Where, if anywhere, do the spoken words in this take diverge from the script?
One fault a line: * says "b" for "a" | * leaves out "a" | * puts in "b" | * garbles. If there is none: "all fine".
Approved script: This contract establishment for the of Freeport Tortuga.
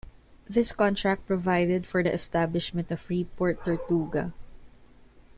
* says "provided" for "establishment"
* puts in "establishment"